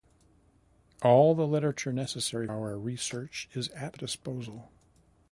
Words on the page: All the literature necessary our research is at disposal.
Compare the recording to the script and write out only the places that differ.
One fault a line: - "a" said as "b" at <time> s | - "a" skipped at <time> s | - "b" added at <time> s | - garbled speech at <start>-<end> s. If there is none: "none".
none